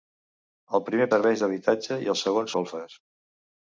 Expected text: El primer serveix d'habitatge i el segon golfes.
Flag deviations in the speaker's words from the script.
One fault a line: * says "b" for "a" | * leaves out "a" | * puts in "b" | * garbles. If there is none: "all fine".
all fine